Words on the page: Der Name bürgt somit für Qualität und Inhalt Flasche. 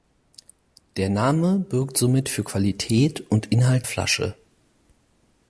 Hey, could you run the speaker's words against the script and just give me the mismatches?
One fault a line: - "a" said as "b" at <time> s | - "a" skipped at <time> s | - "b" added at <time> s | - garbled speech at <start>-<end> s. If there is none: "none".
none